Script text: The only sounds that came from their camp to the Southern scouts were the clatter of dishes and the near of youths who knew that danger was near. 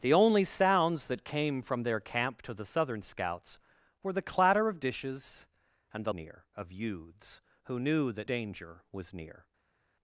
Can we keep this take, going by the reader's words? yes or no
yes